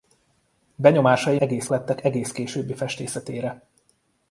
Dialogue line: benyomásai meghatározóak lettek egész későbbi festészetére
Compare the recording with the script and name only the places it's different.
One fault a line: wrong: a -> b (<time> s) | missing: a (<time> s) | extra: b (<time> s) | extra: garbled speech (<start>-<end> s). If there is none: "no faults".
wrong: meghatározóak -> egész (1.4 s)